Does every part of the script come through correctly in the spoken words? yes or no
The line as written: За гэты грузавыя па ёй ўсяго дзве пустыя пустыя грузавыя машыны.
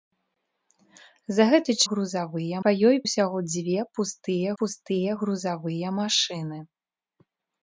yes